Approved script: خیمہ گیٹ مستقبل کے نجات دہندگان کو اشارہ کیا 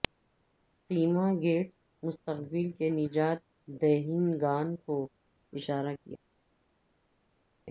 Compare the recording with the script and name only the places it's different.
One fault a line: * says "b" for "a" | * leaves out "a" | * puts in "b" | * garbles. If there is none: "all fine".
all fine